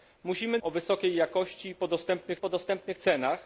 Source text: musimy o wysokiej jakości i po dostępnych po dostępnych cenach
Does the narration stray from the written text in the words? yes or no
no